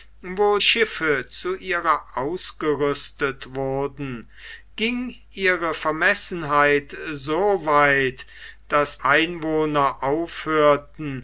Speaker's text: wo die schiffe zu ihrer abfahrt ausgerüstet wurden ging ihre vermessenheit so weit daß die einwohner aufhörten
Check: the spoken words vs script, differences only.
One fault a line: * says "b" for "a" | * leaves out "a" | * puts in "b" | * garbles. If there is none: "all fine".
* leaves out "die"
* leaves out "abfahrt"
* leaves out "die"